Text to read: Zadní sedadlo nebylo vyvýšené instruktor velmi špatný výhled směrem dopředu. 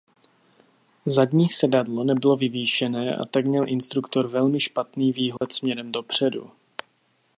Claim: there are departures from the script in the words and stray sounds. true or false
true